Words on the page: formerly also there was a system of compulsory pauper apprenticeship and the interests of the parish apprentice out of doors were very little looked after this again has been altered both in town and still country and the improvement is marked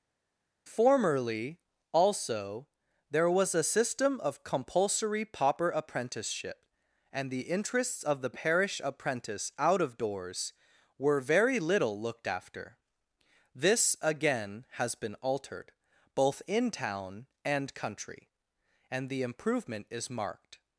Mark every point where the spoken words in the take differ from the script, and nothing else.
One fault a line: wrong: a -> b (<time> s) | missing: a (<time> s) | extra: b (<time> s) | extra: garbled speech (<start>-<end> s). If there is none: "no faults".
missing: still (17.7 s)